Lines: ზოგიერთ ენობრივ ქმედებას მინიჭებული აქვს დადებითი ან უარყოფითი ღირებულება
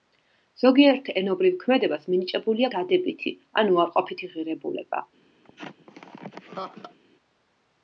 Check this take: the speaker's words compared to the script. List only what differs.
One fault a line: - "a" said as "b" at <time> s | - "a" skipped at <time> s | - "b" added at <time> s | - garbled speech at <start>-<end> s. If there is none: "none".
- "აქვს" skipped at 2.7 s